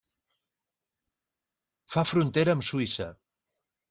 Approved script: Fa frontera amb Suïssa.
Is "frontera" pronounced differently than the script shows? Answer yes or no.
no